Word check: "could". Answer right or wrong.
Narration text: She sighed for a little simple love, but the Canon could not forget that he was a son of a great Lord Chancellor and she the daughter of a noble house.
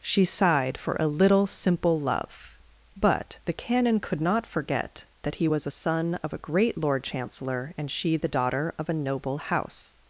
right